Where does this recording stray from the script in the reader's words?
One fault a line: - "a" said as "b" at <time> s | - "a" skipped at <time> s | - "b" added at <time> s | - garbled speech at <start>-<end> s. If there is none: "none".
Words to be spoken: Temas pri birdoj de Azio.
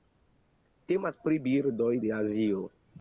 none